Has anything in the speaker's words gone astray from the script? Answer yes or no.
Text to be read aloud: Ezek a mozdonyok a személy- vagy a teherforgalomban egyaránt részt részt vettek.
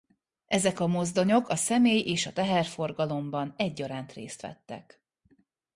yes